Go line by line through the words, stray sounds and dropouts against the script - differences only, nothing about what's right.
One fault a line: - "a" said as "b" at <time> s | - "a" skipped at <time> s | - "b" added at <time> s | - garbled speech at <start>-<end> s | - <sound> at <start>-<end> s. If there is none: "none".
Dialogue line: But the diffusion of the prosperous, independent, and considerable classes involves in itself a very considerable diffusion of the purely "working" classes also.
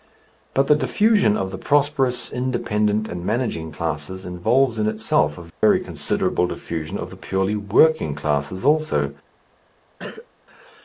- "considerable" said as "managing" at 3.2 s
- dropout at 5.5-5.6 s
- cough at 10.0-10.3 s